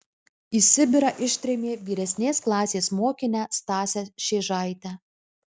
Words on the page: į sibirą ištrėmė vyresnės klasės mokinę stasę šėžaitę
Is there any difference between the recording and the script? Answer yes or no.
no